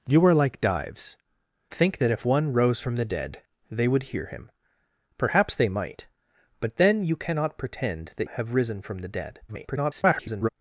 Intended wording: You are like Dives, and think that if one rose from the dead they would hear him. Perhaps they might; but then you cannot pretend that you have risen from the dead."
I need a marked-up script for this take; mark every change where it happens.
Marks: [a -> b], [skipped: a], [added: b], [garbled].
You are like Dives, [skipped: and] think that if one rose from the dead they would hear him. Perhaps they might; but then you cannot pretend that [skipped: you] have risen from the dead." [garbled]